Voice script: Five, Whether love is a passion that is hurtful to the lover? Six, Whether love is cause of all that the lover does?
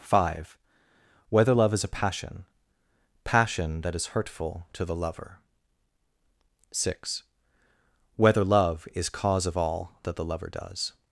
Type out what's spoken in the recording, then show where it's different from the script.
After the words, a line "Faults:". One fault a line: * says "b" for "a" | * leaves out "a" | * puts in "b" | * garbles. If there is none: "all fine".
Five, Whether love is a passion passion that is hurtful to the lover? Six, Whether love is cause of all that the lover does?
Faults:
* puts in "passion"